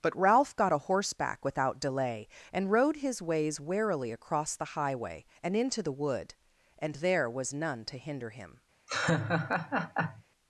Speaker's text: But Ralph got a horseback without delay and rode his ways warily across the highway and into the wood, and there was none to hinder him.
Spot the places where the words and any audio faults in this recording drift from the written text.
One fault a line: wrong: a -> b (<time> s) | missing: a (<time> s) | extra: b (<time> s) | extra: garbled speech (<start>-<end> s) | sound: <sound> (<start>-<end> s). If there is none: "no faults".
sound: laugh (8.9-10.2 s)